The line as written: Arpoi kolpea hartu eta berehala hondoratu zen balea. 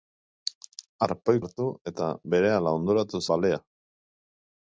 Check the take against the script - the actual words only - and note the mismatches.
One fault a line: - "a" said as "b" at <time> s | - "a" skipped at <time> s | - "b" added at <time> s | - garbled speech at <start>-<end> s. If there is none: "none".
- "kolpea" skipped at 1.4 s
- "zen" skipped at 3.2 s